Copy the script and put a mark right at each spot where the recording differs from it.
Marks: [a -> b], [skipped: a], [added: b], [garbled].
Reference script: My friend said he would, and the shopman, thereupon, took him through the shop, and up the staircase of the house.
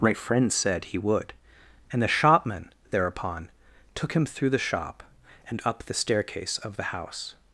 My friend said he would, and the shopman, thereupon, took him through the shop, and up the staircase of the house.